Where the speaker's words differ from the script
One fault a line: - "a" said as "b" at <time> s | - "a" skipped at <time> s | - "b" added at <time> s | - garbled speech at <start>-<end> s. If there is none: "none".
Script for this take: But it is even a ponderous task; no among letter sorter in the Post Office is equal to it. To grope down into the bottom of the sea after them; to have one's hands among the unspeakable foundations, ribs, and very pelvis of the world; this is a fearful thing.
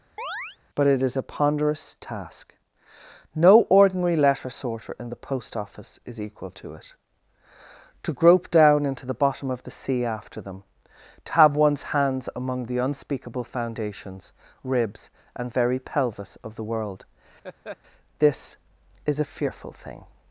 - "even" skipped at 1.2 s
- "among" said as "ordinary" at 3.7 s